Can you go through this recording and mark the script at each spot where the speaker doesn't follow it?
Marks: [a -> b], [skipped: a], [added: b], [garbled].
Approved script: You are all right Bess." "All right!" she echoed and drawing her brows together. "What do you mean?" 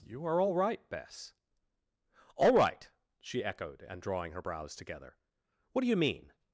You are all right Bess." "All right!" she echoed and drawing her brows together. "What do you mean?"